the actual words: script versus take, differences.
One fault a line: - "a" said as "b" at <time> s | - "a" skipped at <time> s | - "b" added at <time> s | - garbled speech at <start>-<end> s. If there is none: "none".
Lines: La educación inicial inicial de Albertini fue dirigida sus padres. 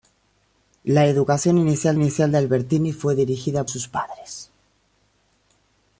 none